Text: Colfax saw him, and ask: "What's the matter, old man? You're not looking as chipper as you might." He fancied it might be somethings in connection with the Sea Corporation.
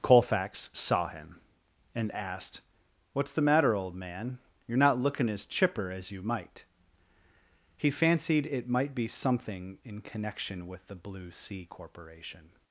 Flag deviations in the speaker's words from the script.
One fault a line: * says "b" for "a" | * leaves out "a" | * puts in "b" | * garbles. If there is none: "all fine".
* says "asked" for "ask"
* says "something" for "somethings"
* puts in "Blue"